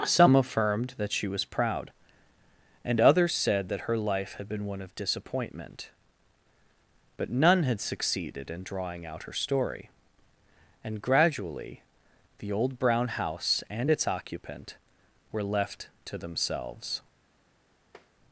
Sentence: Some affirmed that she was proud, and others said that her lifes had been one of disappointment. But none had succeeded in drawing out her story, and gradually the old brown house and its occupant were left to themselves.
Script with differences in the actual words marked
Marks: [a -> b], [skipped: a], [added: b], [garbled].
Some affirmed that she was proud, and others said that her [lifes -> life] had been one of disappointment. But none had succeeded in drawing out her story, and gradually the old brown house and its occupant were left to themselves.